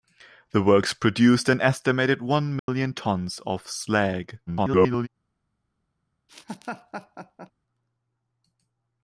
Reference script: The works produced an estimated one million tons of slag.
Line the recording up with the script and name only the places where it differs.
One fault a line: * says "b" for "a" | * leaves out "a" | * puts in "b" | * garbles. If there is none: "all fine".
* garbles